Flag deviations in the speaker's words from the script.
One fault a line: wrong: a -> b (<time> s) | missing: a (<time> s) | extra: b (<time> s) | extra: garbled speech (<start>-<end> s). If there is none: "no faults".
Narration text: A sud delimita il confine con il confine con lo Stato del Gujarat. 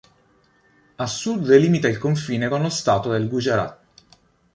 missing: il confine con (2.6 s)